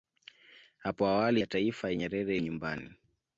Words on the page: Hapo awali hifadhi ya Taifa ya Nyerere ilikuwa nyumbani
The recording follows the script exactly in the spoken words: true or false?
false